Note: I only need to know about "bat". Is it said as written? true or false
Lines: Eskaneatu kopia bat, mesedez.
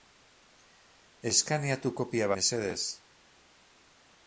false